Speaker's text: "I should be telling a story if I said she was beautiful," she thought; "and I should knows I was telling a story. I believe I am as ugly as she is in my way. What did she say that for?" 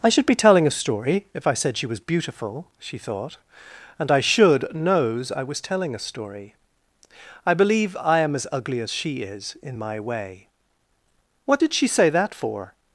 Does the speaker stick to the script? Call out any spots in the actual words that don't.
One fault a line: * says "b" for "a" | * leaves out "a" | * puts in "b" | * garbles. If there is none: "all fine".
all fine